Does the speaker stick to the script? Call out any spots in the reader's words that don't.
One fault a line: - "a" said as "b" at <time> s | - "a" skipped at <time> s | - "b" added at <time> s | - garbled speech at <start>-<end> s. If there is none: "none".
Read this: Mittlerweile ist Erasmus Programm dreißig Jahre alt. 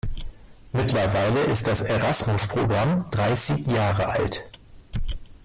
- "das" added at 1.7 s